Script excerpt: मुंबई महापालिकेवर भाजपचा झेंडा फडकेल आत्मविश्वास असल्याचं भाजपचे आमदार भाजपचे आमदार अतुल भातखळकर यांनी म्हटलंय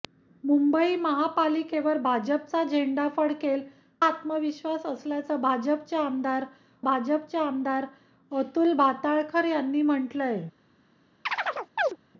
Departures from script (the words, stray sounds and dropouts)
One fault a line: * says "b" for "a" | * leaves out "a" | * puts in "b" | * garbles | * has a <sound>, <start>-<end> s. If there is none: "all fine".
* has a chirp, 11.3-12.0 s